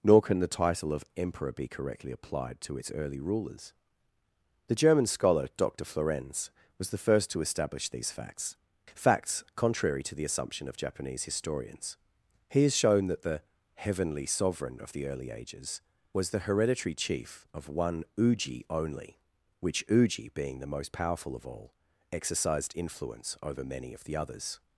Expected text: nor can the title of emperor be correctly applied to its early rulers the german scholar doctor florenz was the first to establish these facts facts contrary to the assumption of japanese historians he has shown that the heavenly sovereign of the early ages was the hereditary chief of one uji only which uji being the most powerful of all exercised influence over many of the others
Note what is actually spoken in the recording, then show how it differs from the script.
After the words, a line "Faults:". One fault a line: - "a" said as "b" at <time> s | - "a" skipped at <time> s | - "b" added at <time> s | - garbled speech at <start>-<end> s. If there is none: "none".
nor can the title of emperor be correctly applied to its early rulers the german scholar doctor florenz was the first to establish these facts facts contrary to the assumption of japanese historians he has shown that the heavenly sovereign of the early ages was the hereditary chief of one uji only which uji being the most powerful of all exercised influence over many of the others
Faults:
none